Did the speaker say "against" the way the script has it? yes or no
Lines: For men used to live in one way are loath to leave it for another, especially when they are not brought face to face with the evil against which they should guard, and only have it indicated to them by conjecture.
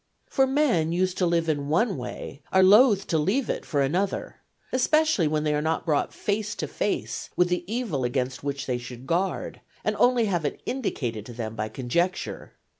yes